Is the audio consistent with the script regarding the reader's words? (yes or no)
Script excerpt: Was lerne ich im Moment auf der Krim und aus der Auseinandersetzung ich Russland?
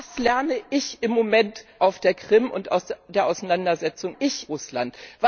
yes